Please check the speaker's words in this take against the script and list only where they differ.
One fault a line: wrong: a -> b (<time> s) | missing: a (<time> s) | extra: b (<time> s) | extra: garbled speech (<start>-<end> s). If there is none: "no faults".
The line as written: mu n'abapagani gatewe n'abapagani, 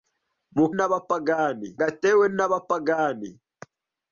no faults